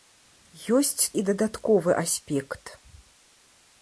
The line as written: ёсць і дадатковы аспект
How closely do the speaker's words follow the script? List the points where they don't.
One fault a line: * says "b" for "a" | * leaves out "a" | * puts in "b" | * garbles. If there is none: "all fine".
all fine